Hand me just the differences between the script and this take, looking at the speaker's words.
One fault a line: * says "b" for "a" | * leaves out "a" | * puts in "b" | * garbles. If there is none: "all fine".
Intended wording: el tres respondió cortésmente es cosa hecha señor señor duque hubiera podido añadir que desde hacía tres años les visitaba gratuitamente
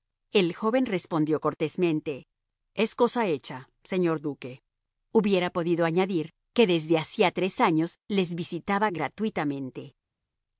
* says "joven" for "tres"
* leaves out "señor"